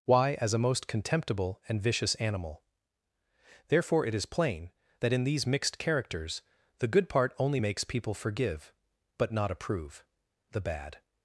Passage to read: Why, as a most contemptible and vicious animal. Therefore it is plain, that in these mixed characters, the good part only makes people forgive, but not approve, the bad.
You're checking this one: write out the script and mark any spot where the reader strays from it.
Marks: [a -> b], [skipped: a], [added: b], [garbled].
Why, as a most contemptible and vicious animal. Therefore it is plain, that in these mixed characters, the good part only makes people forgive, but not approve, the bad.